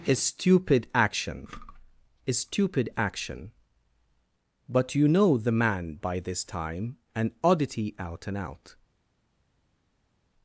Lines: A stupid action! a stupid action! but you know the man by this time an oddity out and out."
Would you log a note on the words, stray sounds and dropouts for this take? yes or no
no